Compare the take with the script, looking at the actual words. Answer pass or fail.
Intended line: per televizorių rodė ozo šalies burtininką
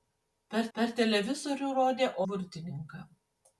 fail